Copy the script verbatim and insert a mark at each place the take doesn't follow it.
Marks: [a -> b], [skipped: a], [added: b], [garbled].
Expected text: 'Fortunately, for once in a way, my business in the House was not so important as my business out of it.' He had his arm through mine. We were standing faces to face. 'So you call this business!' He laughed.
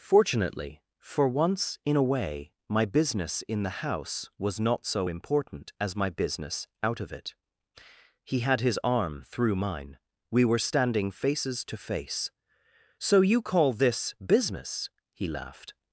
'Fortunately, for once in a way, my business in the House was not so important as my business out of it.' He had his arm through mine. We were standing faces to face. 'So you call this business!' He laughed.